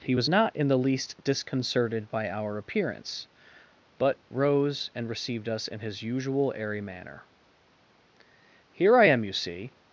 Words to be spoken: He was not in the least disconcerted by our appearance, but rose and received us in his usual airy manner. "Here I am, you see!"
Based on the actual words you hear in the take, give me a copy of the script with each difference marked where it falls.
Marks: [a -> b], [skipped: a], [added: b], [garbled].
He was not in the least disconcerted by our appearance, but rose and received us in his usual airy manner. "Here I am, you see!"